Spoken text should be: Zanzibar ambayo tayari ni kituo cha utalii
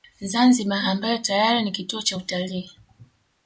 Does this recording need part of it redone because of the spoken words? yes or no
no